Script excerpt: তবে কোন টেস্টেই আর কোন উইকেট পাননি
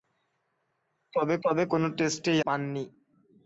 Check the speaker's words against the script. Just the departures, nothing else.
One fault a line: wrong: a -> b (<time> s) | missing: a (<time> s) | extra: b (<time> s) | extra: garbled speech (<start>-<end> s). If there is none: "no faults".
extra: তবে (1.4 s)
missing: আর কোন উইকেট (2.4 s)